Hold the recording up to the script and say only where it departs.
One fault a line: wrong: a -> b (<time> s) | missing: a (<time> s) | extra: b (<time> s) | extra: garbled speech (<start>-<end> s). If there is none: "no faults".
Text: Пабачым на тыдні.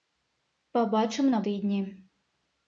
no faults